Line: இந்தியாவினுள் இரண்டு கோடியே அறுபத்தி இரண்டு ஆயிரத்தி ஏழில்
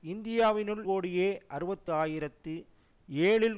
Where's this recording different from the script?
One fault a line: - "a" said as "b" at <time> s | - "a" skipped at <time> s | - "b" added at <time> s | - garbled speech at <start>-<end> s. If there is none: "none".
- "இரண்டு" skipped at 0.8 s
- "இரண்டு" skipped at 1.9 s